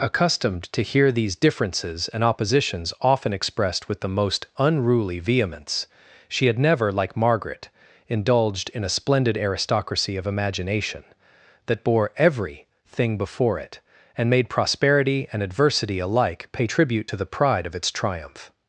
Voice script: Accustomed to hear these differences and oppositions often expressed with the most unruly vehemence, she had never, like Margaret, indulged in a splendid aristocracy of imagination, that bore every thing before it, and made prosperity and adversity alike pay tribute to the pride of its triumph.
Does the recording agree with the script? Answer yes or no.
yes